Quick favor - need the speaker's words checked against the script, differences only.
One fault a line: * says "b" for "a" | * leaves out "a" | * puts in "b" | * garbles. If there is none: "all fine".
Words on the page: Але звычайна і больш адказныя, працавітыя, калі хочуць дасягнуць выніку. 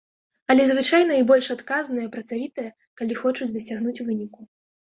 all fine